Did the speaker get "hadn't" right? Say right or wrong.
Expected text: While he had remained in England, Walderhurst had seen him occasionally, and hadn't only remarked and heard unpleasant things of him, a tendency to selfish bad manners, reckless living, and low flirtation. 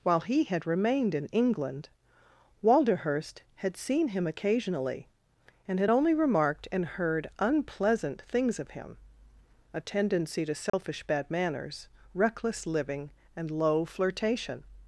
wrong